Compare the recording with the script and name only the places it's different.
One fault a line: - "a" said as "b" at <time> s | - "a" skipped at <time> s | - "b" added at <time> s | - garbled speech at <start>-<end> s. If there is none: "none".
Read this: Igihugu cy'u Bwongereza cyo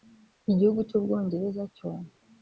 none